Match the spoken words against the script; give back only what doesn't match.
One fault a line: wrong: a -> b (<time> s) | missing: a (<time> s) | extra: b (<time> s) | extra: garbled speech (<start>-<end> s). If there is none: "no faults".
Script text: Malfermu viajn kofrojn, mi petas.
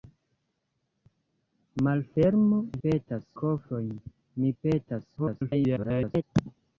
wrong: viajn -> petas (2.8 s)
extra: garbled speech (5.2-6.2 s)